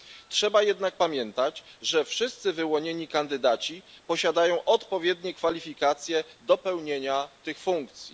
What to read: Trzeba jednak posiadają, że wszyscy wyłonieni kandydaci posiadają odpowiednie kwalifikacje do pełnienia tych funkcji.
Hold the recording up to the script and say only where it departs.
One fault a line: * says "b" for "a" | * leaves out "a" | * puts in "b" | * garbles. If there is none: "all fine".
* says "pamiętać" for "posiadają"